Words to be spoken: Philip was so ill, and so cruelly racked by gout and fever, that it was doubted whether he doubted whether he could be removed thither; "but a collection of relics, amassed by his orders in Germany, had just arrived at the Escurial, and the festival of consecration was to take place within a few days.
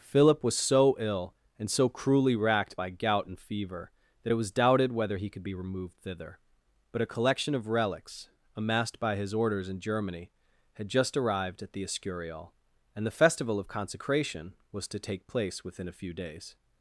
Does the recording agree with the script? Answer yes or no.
no